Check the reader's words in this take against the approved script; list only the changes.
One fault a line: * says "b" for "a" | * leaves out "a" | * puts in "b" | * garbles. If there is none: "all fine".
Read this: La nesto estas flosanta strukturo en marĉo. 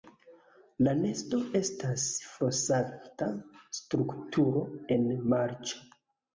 all fine